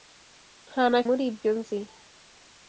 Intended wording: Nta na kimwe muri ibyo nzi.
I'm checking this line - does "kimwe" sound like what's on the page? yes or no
no